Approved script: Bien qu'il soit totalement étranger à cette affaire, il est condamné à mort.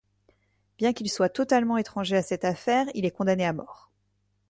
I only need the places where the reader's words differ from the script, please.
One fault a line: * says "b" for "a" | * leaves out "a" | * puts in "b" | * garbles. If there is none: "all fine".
all fine